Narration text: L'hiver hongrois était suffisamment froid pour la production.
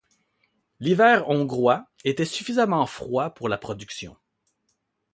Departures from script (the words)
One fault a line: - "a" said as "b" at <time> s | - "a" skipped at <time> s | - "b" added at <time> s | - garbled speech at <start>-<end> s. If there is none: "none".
none